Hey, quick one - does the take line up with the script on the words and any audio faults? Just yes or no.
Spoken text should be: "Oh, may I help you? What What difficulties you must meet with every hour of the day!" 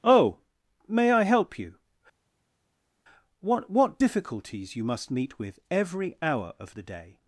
yes